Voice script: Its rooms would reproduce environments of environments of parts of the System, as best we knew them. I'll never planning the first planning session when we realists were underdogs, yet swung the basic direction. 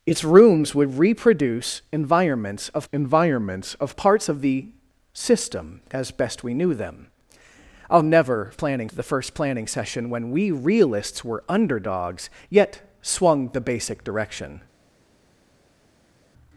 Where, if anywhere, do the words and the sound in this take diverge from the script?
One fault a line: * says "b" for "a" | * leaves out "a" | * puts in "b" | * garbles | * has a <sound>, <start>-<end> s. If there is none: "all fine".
all fine